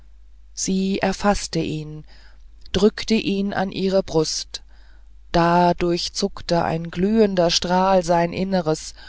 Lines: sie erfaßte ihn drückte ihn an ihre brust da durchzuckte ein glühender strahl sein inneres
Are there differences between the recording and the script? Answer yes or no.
no